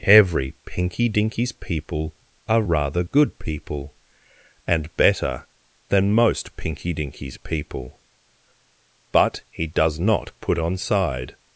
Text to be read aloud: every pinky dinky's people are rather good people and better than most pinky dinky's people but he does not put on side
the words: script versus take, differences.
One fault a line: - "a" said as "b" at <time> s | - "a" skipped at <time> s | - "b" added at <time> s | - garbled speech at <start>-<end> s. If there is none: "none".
none